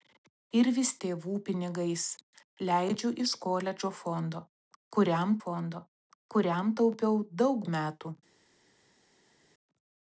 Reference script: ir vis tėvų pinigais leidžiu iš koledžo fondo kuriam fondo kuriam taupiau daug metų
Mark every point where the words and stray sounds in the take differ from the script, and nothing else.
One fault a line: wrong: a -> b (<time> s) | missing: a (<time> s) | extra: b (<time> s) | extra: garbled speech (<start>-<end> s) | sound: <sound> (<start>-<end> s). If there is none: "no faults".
no faults